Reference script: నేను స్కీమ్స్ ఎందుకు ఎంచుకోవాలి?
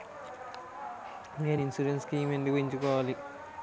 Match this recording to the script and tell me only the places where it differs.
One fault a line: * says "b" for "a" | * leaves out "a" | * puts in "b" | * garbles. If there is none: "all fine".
* puts in "ఇన్సురెన్స్"